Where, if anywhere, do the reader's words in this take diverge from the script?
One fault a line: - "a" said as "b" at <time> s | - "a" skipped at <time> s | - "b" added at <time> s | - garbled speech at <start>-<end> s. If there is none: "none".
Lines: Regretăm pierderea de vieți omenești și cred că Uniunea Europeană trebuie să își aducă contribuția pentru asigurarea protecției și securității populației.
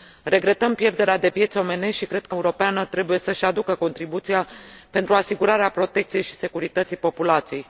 - "Uniunea" skipped at 2.4 s